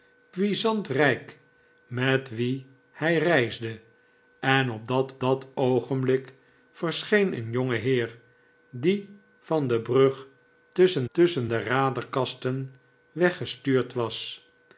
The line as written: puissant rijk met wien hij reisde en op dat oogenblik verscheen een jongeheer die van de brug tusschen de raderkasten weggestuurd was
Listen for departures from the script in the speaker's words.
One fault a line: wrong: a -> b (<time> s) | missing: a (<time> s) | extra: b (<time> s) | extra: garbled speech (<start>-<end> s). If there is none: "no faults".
extra: dat (5.2 s)
extra: tusschen (11.1 s)